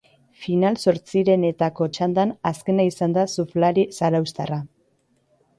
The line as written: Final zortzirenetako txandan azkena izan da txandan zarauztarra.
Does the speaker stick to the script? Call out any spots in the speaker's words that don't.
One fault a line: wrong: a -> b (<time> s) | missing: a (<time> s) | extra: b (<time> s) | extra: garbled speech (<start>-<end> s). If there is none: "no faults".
wrong: txandan -> surflari (3.3 s)